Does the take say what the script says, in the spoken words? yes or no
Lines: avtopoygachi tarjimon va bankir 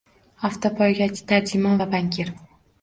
yes